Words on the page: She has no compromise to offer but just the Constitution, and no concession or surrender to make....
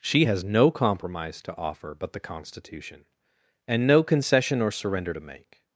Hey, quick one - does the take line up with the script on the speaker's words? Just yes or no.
no